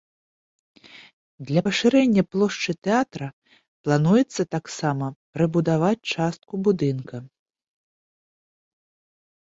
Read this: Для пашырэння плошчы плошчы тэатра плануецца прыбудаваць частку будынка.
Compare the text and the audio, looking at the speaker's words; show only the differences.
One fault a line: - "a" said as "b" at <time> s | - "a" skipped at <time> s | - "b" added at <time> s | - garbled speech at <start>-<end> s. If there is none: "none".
- "плошчы" skipped at 2.7 s
- "таксама" added at 4.6 s